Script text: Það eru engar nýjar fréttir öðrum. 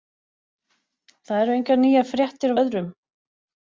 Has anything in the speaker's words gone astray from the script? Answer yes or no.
no